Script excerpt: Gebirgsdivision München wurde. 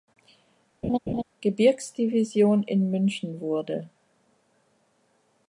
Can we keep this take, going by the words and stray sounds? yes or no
no